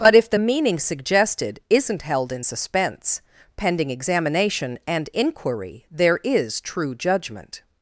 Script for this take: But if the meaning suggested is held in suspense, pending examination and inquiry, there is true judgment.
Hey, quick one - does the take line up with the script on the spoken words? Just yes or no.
no